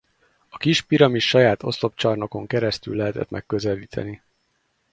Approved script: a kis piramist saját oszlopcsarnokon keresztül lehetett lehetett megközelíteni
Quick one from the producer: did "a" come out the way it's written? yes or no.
yes